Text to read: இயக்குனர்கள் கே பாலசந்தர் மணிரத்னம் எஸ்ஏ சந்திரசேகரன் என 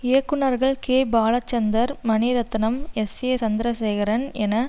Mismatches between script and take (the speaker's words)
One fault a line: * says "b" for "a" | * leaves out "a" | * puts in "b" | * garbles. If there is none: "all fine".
all fine